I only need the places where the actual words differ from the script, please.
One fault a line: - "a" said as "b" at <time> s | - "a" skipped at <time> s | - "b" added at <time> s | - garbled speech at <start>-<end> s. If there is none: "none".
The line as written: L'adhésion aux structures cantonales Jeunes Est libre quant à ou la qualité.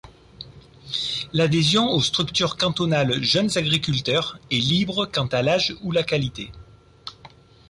- "Agriculteurs" added at 3.5 s
- "l'âge" added at 5.4 s